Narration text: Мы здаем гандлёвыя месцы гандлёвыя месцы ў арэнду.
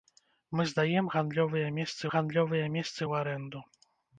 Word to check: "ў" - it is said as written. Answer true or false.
true